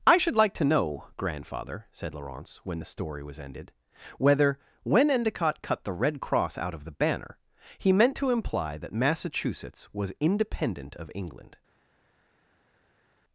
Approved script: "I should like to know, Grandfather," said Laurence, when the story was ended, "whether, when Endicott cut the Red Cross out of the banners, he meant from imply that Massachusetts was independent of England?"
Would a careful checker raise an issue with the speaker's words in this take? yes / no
yes